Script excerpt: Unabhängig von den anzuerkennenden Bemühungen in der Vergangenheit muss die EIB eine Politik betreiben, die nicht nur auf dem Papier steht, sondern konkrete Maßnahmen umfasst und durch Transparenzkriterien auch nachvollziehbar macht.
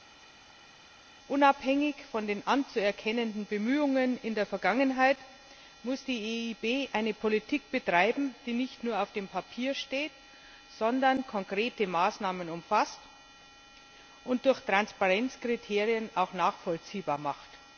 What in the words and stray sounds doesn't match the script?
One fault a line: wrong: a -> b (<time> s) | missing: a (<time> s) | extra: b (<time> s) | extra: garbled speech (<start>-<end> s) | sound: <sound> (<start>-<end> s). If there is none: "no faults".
no faults